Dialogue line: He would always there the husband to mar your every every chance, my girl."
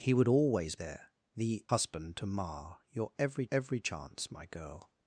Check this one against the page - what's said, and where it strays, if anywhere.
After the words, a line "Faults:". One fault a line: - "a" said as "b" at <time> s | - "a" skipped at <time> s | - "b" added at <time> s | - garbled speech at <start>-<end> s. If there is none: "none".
He would always there the husband to mar your every every chance, my girl."
Faults:
none